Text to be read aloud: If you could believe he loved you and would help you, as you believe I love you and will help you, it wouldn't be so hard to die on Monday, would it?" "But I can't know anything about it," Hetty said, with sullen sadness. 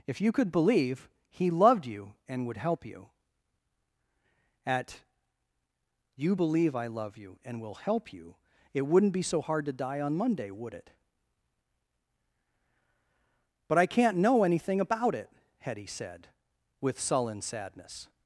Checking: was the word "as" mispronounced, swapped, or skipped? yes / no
yes